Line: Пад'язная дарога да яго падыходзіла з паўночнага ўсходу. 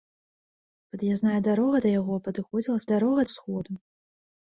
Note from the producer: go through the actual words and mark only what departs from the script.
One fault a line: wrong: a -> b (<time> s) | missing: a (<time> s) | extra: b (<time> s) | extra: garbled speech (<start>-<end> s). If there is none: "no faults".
wrong: паўночнага -> дарога (2.9 s)